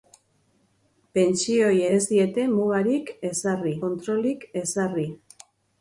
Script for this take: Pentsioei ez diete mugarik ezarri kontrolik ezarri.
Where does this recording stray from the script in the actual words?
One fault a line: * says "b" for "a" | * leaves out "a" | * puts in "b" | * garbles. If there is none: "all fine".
all fine